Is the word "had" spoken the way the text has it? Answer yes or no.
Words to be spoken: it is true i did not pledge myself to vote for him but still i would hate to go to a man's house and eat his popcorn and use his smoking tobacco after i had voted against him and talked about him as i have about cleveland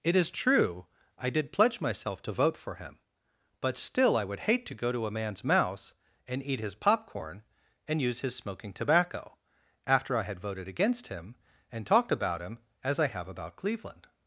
yes